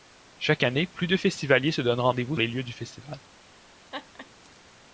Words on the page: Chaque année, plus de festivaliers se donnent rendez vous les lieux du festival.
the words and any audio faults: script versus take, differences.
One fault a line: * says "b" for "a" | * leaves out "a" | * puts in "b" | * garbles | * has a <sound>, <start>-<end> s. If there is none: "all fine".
* has a laugh, 3.9-4.3 s